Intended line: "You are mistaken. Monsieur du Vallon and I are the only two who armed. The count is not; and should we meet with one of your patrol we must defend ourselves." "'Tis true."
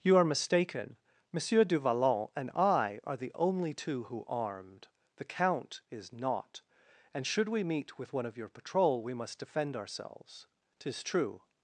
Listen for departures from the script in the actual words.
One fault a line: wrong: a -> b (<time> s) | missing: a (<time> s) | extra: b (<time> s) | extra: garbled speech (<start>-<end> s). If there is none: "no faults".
no faults